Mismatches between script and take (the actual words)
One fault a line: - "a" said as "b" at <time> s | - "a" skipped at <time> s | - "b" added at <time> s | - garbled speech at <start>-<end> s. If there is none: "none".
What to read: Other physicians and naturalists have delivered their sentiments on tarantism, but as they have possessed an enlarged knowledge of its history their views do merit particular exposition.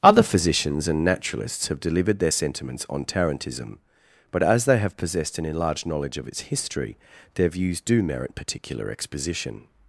none